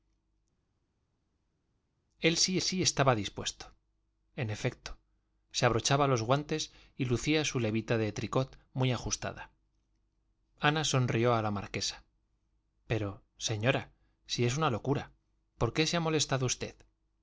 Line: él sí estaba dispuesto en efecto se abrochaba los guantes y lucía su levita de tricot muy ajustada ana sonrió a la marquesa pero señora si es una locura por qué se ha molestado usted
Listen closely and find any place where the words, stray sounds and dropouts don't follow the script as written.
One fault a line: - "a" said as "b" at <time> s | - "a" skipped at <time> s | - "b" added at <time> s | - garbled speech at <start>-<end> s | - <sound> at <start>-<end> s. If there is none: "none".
- "sí" added at 2.6 s